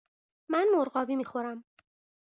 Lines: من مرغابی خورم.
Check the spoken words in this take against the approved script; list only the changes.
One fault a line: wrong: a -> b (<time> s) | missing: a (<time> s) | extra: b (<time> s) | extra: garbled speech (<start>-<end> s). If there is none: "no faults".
extra: می (1.1 s)